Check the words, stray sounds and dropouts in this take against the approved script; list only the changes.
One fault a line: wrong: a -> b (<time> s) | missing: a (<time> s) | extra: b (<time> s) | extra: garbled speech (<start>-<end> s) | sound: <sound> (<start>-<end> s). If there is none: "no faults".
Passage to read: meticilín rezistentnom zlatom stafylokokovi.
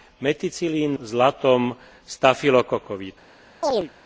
missing: rezistentnom (1.0 s)
sound: chirp (3.6-3.9 s)